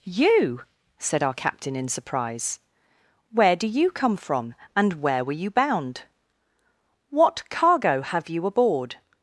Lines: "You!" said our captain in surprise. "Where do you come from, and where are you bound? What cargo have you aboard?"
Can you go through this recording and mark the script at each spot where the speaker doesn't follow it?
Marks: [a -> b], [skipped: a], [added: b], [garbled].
"You!" said our captain in surprise. "Where do you come from, and where [are -> were] you bound? What cargo have you aboard?"